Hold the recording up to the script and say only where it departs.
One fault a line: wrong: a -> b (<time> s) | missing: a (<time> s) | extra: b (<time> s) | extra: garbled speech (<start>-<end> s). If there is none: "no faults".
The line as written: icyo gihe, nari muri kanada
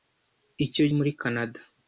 missing: gihe nari (0.8 s)